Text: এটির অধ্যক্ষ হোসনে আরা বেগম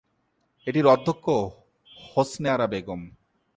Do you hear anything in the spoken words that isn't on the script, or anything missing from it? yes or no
no